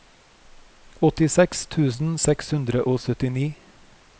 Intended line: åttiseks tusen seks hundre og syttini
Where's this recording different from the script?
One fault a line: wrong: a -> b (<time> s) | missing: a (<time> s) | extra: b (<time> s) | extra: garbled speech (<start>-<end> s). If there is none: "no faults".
no faults